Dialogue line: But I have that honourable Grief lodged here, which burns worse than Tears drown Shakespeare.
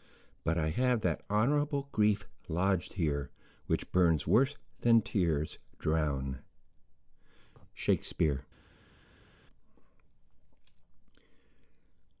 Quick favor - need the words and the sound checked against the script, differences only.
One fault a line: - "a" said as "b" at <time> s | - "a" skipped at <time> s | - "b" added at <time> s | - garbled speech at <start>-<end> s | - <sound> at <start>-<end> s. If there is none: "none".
none